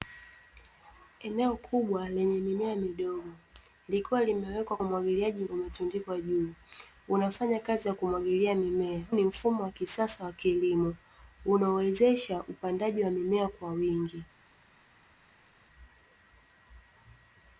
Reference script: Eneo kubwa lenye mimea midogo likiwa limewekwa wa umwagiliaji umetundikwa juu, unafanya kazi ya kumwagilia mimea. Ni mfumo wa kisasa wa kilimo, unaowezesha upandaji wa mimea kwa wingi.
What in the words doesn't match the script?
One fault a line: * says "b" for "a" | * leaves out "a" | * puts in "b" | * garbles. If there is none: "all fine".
all fine